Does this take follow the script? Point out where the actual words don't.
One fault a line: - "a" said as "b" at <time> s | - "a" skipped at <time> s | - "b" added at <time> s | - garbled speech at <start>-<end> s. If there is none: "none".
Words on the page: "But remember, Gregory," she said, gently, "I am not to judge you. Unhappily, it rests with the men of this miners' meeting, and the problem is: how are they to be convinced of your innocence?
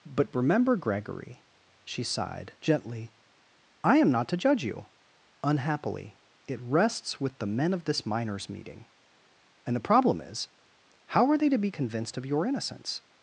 - "said" said as "sighed" at 2.0 s